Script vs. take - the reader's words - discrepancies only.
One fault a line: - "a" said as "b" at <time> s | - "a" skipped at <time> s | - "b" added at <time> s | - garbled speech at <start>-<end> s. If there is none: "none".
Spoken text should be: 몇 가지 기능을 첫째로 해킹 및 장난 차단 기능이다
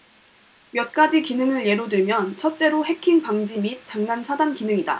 - "예로 들면" added at 1.6 s
- "방지" added at 3.2 s